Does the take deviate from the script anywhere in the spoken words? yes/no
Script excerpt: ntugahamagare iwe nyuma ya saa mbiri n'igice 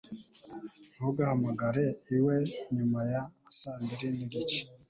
no